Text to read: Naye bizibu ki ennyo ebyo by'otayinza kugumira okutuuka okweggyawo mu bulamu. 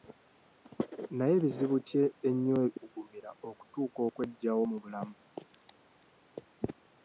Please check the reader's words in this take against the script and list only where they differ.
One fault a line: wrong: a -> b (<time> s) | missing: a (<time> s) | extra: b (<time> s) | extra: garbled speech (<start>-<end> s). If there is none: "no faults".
missing: ebyo by'otayinza (2.6 s)